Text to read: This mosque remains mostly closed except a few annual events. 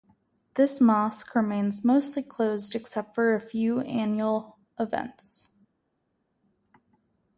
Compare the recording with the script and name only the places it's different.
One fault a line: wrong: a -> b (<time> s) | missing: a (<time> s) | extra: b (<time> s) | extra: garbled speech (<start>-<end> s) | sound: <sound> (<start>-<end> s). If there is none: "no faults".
extra: for (3.1 s)